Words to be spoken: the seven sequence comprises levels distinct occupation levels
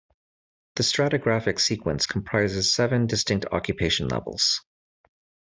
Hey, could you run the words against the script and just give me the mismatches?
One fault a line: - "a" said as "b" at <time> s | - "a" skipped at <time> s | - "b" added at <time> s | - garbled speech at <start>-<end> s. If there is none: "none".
- "seven" said as "stratigraphic" at 0.8 s
- "levels" said as "seven" at 2.7 s